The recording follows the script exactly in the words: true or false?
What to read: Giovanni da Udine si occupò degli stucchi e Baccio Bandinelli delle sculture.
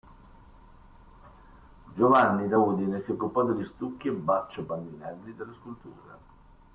true